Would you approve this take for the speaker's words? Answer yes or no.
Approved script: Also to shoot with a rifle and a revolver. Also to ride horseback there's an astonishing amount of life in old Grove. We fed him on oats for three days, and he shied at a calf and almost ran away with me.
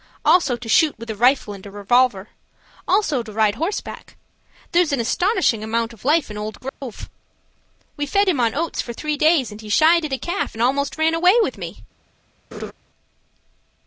yes